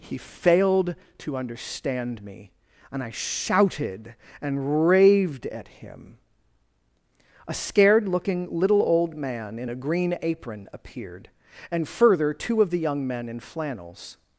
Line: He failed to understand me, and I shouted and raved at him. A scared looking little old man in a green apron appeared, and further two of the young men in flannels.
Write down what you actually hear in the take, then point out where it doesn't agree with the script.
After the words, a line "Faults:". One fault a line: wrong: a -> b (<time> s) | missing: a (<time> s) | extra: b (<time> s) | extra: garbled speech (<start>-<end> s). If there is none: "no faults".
He failed to understand me, and I shouted and raved at him. A scared looking little old man in a green apron appeared, and further two of the young men in flannels.
Faults:
no faults